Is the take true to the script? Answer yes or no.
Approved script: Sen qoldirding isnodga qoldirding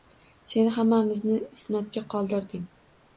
no